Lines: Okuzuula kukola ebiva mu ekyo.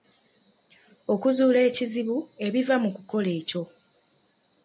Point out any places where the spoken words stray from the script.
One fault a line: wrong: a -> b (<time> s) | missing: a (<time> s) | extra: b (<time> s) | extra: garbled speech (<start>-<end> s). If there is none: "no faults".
wrong: kukola -> ekizibu (1.7 s)
extra: kukola (2.9 s)